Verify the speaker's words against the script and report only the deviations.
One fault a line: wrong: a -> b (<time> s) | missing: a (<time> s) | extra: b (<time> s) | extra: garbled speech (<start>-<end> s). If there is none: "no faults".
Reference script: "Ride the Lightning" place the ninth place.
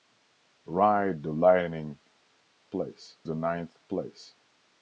no faults